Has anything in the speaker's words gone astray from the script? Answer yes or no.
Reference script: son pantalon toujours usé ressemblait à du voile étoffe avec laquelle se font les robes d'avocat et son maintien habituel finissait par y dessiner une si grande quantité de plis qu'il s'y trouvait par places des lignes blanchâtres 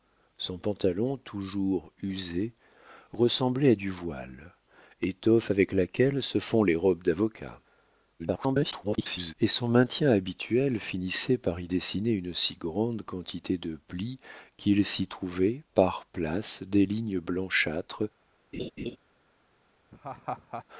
yes